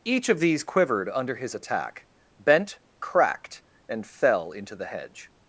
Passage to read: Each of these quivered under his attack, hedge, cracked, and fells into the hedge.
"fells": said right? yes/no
no